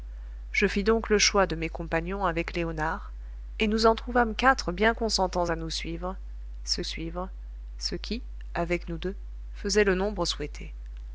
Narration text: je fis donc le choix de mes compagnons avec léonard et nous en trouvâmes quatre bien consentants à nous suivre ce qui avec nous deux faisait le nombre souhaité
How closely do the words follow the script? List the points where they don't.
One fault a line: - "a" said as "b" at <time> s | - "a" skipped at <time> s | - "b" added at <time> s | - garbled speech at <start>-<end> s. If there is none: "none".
- "suivre ce" added at 6.8 s